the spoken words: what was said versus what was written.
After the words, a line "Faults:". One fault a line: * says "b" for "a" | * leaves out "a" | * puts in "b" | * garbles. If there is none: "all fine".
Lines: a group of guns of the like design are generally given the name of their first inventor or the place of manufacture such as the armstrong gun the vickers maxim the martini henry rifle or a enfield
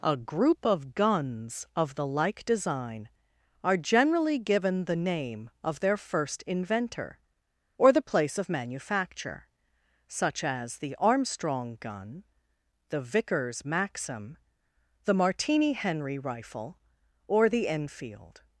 a group of guns of the like design are generally given the name of their first inventor or the place of manufacture such as the armstrong gun the vickers maxim the martini henry rifle or the enfield
Faults:
* says "the" for "a"